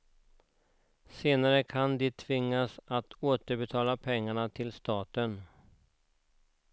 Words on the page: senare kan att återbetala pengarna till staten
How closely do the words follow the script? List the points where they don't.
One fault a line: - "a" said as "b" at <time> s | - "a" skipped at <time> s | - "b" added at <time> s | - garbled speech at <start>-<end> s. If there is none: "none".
- "de tvingas" added at 2.0 s